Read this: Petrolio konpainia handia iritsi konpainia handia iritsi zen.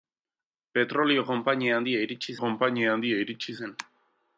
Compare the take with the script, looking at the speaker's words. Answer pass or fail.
pass